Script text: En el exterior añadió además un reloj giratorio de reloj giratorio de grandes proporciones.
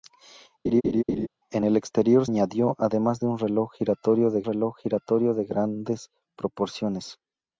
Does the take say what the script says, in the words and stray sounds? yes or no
no